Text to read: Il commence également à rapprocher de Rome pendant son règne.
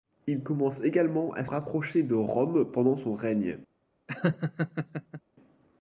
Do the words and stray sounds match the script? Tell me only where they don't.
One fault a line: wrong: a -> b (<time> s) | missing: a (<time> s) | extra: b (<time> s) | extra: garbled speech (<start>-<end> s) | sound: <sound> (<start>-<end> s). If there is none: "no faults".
sound: laugh (4.1-5.2 s)